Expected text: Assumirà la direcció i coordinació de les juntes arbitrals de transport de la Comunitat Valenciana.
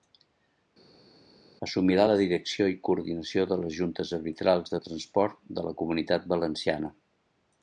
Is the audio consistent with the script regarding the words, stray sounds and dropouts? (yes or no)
yes